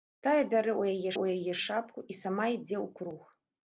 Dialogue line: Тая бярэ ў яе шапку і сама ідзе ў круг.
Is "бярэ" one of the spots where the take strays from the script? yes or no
no